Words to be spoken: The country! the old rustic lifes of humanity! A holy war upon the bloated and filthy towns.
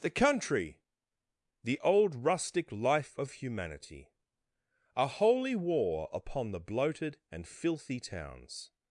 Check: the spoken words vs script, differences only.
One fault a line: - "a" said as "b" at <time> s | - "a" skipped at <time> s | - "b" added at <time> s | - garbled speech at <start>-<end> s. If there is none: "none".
- "lifes" said as "life" at 2.7 s